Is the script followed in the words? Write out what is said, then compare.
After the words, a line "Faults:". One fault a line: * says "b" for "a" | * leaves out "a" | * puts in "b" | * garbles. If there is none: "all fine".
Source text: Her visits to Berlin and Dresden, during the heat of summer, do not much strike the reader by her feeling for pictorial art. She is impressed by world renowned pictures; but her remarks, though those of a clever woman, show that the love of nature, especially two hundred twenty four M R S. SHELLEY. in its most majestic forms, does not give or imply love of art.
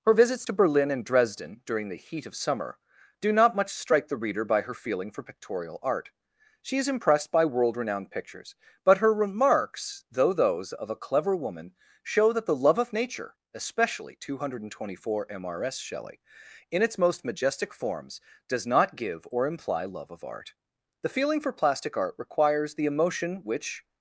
Her visits to Berlin and Dresden, during the heat of summer, do not much strike the reader by her feeling for pictorial art. She is impressed by world renowned pictures; but her remarks, though those of a clever woman, show that the love of nature, especially two hundred twenty four M R S. SHELLEY. in its most majestic forms, does not give or imply love of art. The feeling for plastic art requires the emotion which
Faults:
* puts in "The feeling for plastic art requires the emotion which"